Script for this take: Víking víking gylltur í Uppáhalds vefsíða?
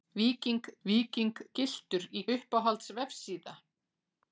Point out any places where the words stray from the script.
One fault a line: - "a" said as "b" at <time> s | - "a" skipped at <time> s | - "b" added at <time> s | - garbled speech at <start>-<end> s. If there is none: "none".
none